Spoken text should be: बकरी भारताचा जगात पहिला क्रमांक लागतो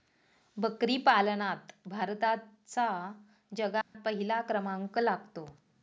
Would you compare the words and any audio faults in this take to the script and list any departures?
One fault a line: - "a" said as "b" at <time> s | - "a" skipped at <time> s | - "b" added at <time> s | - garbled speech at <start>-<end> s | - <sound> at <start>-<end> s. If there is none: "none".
- "पालनात" added at 1.0 s
- dropout at 3.8-3.9 s